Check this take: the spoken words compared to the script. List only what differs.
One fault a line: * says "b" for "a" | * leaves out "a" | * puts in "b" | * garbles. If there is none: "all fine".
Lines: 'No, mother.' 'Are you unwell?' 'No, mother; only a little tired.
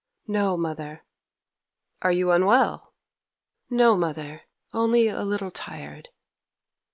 all fine